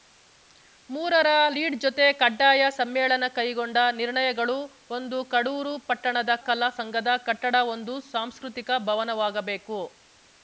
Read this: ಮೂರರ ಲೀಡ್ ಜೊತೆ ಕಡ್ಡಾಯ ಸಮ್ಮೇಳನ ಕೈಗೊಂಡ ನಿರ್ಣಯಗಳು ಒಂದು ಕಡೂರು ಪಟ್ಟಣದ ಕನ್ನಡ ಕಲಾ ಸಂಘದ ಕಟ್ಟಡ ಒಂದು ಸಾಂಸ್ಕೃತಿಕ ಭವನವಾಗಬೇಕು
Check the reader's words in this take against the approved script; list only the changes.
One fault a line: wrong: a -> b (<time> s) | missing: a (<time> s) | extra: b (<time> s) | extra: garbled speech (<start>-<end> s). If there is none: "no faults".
missing: ಕನ್ನಡ (6.3 s)